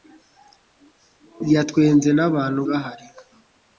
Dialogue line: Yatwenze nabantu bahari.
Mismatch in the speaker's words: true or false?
false